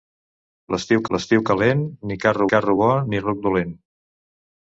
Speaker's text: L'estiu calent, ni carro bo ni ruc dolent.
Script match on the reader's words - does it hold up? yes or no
no